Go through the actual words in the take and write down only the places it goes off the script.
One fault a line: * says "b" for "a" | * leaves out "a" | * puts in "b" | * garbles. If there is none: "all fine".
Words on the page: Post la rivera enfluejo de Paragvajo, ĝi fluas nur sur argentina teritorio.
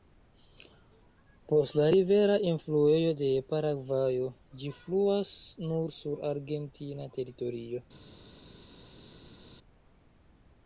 all fine